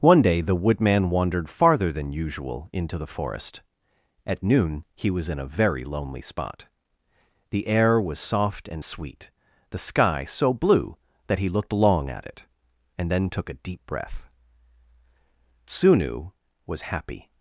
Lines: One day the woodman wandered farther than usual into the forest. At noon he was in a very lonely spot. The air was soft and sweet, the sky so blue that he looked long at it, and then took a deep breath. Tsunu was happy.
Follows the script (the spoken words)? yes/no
yes